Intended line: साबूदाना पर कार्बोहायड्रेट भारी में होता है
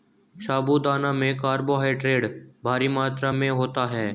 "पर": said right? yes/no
no